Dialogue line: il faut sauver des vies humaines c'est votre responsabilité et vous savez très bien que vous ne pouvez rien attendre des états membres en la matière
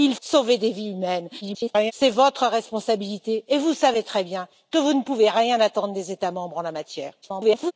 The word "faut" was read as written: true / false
false